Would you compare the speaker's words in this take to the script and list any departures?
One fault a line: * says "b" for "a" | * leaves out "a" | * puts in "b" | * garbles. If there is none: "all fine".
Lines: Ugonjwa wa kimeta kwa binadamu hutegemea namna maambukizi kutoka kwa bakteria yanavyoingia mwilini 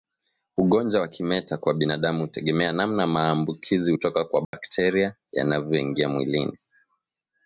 all fine